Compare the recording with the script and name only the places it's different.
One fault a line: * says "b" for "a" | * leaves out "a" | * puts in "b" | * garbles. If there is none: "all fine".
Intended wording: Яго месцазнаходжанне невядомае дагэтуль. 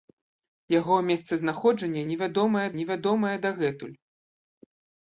* puts in "невядомае"